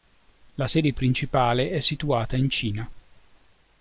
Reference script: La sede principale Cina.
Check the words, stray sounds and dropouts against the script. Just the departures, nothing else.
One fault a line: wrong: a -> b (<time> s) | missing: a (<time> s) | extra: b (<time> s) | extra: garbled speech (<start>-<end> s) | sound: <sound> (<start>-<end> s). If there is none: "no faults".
extra: è situata in (1.7 s)